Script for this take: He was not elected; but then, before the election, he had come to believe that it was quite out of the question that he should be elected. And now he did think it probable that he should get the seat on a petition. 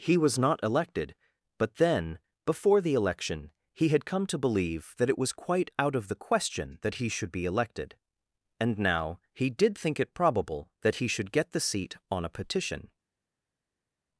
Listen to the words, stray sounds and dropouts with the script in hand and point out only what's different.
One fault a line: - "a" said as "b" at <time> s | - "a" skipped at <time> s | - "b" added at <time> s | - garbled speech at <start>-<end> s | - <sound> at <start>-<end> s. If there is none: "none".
none